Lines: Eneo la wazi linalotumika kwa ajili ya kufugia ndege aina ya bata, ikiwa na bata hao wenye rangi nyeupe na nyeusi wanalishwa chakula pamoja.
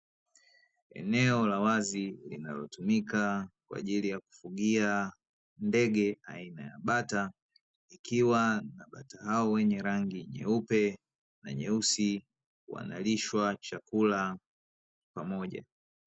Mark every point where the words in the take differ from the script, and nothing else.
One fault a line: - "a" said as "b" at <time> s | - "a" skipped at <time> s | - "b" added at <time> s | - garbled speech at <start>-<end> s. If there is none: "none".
none